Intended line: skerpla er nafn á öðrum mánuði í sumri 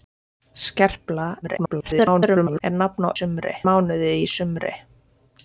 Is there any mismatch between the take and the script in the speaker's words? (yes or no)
yes